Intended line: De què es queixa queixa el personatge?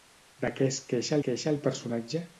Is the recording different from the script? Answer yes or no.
no